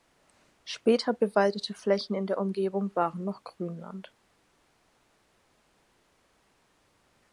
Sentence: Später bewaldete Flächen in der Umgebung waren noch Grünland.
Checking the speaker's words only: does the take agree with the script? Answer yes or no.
yes